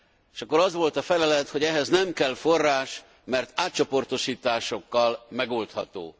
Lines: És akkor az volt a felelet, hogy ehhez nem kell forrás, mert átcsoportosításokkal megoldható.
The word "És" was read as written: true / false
true